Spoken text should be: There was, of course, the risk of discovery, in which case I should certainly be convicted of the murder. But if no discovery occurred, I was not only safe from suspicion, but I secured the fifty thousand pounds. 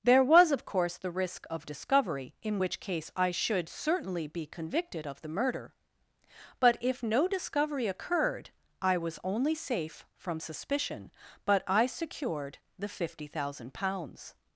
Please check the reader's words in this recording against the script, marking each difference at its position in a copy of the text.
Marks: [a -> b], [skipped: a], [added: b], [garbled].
There was, of course, the risk of discovery, in which case I should certainly be convicted of the murder. But if no discovery occurred, I was [skipped: not] only safe from suspicion, but I secured the fifty thousand pounds.